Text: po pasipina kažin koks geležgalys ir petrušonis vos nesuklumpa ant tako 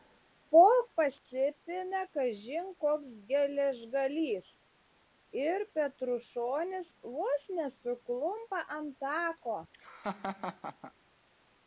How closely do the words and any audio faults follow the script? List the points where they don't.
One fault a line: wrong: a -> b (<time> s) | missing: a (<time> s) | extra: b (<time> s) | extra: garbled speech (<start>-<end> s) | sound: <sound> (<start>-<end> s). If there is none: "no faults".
sound: dropout (1.2-1.3 s)
sound: laugh (9.7-10.9 s)